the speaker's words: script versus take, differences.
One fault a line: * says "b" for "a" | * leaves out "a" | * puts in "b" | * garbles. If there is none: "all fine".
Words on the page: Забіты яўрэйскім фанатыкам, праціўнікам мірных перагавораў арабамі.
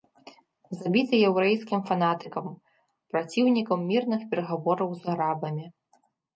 * puts in "з"